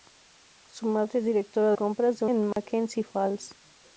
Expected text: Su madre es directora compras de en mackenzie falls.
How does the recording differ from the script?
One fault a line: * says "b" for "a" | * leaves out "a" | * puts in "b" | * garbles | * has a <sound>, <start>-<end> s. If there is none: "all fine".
* has a dropout, 2.5-2.6 s